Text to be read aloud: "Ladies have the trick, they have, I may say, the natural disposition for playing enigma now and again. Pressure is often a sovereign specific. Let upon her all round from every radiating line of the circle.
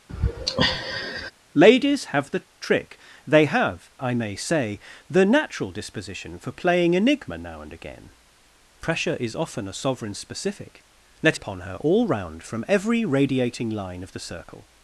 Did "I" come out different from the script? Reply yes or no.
no